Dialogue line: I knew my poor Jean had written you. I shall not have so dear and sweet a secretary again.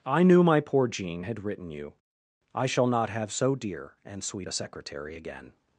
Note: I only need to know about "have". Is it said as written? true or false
true